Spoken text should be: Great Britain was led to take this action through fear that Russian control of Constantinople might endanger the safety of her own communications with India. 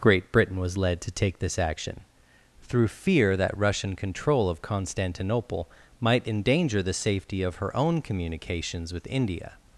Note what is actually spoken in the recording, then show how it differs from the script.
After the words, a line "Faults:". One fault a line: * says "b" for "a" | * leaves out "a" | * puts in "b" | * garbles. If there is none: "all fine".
Great Britain was led to take this action through fear that Russian control of Constantinople might endanger the safety of her own communications with India.
Faults:
all fine